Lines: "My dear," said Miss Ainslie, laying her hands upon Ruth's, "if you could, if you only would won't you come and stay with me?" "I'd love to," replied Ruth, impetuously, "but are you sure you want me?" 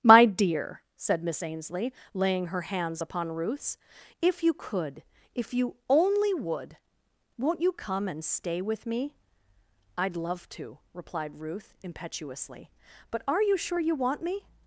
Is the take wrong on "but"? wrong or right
right